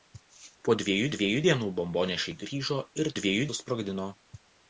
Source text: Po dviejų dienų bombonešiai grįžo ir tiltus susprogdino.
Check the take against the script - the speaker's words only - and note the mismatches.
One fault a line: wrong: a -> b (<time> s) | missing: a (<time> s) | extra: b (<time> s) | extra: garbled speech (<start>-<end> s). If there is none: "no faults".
extra: dviejų (1.1 s)
wrong: tiltus -> dviejų (3.2 s)